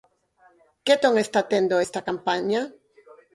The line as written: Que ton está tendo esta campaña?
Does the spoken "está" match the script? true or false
true